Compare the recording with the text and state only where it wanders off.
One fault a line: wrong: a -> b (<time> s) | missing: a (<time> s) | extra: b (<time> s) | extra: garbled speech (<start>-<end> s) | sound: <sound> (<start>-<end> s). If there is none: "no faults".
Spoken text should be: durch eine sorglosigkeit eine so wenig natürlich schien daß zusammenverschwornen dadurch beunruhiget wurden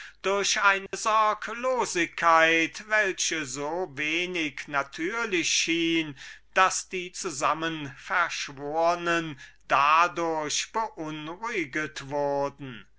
sound: dropout (0.9-0.9 s)
wrong: eine -> welche (2.9 s)
extra: die (6.9 s)